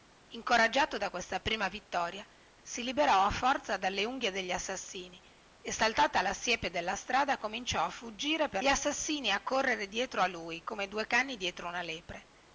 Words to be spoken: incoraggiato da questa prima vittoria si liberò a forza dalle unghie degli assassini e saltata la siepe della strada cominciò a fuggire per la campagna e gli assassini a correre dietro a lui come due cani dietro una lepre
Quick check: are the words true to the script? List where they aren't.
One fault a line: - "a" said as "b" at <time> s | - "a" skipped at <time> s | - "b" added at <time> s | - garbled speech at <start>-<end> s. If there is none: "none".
- "la campagna e" skipped at 8.6 s